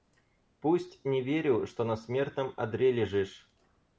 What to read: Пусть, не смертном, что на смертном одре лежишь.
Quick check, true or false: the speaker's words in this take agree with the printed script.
false